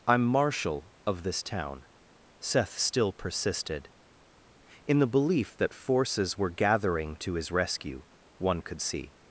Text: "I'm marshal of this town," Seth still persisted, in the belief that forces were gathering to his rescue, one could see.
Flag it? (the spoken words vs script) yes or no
no